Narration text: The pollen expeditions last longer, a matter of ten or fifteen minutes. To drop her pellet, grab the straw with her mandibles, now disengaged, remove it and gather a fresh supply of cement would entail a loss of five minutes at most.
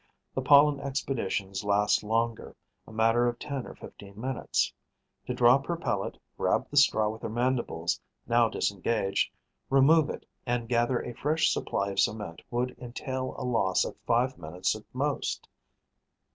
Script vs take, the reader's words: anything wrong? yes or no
no